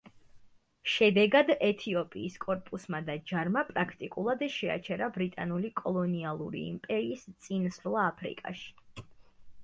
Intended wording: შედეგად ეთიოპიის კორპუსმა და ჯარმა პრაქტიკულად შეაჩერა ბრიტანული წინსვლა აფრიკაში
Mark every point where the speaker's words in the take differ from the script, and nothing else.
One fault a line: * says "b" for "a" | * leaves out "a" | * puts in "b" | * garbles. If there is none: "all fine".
* puts in "კოლონიალური იმპერიის"